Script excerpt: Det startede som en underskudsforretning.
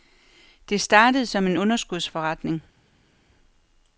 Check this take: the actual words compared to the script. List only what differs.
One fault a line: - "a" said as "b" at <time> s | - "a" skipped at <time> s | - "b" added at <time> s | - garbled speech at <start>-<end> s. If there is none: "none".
none